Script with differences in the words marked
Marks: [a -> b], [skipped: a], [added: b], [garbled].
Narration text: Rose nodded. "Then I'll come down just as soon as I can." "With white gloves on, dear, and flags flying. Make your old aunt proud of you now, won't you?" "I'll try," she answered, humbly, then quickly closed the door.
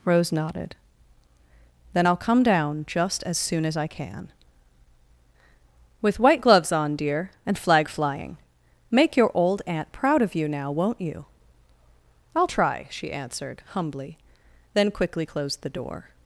Rose nodded. "Then I'll come down just as soon as I can." "With white gloves on, dear, and [flags -> flag] flying. Make your old aunt proud of you now, won't you?" "I'll try," she answered, humbly, then quickly closed the door.